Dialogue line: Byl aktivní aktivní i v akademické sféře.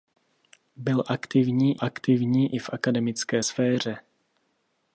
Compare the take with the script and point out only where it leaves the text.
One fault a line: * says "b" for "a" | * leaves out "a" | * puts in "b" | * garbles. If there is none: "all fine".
all fine